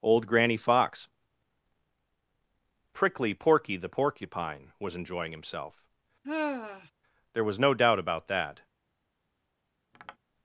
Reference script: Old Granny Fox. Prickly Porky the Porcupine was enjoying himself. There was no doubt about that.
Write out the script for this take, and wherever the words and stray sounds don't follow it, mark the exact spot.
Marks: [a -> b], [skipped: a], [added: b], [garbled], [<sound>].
Old Granny Fox. Prickly Porky the Porcupine was enjoying himself. [sigh] There was no doubt about that. [tap]